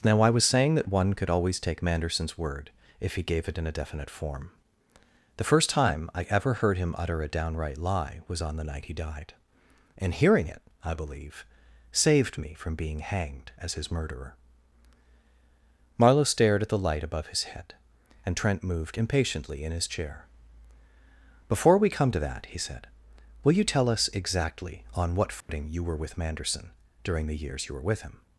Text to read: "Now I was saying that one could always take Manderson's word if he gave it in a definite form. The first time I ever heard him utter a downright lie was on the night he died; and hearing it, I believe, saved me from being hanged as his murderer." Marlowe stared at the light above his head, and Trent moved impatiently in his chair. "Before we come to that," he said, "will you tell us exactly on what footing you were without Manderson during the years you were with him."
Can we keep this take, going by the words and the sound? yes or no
no